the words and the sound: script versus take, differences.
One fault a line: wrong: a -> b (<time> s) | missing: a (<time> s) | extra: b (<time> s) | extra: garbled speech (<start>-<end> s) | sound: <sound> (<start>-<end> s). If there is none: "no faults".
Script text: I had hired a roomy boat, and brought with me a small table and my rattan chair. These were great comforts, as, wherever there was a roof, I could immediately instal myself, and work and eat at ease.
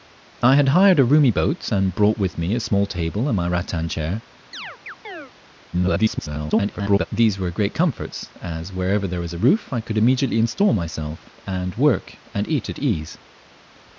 sound: chirp (4.5-5.3 s)
extra: garbled speech (5.7-7.1 s)